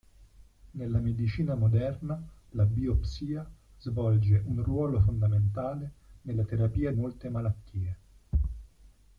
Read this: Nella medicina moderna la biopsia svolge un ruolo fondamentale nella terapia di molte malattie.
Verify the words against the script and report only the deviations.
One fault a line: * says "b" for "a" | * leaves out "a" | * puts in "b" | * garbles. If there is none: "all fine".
* leaves out "di"